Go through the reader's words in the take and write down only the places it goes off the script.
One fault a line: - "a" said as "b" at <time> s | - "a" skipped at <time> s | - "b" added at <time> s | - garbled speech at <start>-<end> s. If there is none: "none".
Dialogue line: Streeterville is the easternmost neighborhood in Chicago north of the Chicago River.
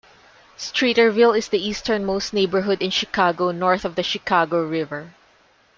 none